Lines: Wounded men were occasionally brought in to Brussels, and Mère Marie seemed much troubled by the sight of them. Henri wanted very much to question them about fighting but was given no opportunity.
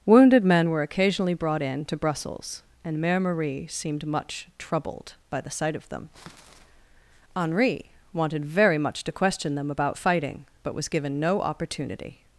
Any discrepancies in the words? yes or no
no